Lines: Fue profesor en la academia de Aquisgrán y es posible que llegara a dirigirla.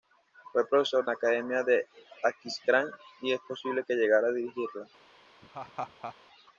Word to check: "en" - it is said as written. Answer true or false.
false